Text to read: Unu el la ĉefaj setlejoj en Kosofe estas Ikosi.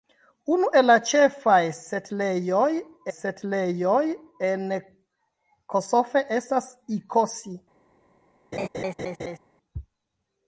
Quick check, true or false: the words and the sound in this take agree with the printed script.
false